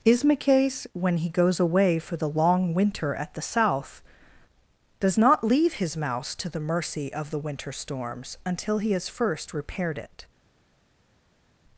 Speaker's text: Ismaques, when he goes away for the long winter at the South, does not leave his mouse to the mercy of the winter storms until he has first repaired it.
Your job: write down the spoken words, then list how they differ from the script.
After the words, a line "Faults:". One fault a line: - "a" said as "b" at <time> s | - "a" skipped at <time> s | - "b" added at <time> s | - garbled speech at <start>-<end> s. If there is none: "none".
Ismaques, when he goes away for the long winter at the South, does not leave his mouse to the mercy of the winter storms until he has first repaired it.
Faults:
none